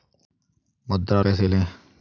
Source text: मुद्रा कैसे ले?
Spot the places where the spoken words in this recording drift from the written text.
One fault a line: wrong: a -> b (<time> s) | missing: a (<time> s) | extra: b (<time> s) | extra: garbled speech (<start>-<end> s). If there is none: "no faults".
no faults